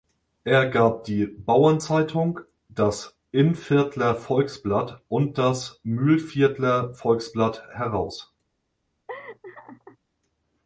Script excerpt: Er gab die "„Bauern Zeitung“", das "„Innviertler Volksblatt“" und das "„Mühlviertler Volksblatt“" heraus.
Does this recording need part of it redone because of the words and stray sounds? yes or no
yes